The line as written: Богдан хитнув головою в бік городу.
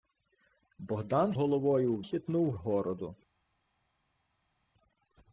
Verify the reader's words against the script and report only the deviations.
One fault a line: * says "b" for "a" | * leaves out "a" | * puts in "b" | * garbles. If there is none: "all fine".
* leaves out "хитнув"
* says "хитнув" for "бік"